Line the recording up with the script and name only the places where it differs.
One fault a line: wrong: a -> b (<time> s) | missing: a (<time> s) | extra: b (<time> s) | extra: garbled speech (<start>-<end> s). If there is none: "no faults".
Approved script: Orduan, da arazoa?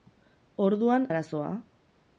no faults